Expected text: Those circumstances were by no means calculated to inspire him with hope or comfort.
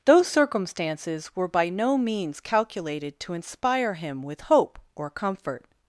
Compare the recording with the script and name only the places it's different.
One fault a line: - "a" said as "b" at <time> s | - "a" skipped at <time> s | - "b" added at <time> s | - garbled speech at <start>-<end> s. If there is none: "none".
none